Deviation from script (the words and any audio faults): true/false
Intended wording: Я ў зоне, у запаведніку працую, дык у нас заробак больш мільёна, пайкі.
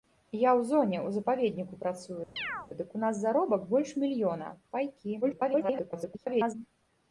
true